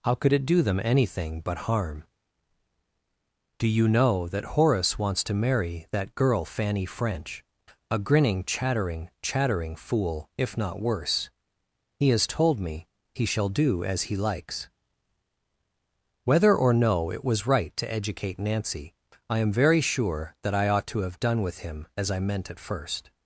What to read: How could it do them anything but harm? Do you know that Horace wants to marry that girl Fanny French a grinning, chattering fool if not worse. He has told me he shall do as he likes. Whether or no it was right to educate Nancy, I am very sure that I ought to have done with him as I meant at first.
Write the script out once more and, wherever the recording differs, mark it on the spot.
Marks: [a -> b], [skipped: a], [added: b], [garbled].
How could it do them anything but harm? Do you know that Horace wants to marry that girl Fanny French a grinning, chattering [added: chattering] fool if not worse. He has told me he shall do as he likes. Whether or no it was right to educate Nancy, I am very sure that I ought to have done with him as I meant at first.